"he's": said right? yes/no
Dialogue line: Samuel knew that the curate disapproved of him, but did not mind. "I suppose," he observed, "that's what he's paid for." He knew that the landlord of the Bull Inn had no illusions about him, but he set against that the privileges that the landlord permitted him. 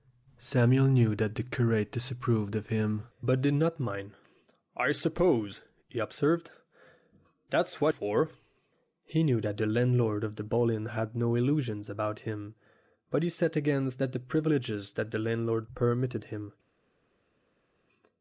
no